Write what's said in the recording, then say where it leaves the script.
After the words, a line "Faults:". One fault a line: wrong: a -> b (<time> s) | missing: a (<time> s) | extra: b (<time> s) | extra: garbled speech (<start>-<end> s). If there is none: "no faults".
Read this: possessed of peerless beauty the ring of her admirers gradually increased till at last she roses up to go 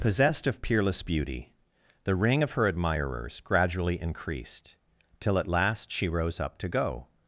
possessed of peerless beauty the ring of her admirers gradually increased till at last she rose up to go
Faults:
wrong: roses -> rose (6.1 s)